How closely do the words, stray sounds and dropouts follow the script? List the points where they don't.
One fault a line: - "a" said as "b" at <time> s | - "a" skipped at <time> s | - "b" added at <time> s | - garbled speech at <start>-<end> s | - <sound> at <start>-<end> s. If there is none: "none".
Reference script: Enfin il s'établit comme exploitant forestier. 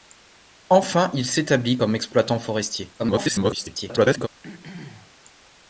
- garbled speech at 3.0-4.3 s
- throat clearing at 4.4-5.1 s